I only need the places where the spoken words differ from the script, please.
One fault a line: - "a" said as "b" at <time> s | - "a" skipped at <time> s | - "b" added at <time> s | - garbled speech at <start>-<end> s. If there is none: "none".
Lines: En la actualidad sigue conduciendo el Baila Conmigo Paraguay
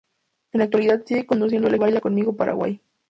none